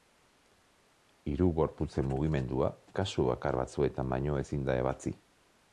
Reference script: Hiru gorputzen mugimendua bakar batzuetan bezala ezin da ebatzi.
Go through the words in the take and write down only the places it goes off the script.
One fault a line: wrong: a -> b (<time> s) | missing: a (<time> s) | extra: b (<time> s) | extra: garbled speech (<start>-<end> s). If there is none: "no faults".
extra: kasu (3.0 s)
wrong: bezala -> baino (4.2 s)